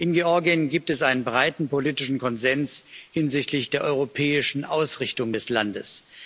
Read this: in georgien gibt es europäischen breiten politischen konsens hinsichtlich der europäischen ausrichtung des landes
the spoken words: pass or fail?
fail